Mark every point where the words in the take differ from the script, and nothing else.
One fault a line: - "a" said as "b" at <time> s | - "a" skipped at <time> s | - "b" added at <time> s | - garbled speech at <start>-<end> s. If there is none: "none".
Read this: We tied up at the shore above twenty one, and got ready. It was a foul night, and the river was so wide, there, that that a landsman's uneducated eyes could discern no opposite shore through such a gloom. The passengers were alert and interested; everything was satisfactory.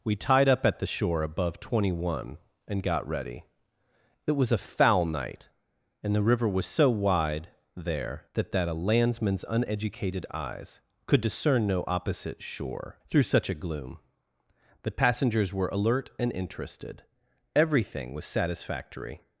none